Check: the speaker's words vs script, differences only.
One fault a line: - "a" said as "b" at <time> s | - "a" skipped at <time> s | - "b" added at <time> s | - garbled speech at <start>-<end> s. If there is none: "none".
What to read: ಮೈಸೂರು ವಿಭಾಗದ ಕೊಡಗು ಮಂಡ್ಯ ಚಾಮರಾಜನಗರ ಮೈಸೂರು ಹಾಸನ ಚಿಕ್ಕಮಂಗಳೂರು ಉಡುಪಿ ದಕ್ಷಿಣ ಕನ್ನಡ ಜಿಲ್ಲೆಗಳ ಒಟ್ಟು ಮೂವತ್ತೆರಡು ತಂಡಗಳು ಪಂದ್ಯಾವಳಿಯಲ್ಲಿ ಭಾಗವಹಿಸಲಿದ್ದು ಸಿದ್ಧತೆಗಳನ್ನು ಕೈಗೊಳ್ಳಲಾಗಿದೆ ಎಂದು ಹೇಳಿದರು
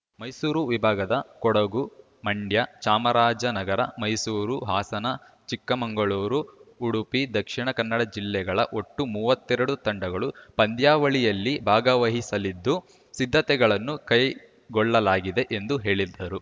none